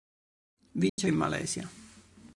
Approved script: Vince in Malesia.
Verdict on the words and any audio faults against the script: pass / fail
fail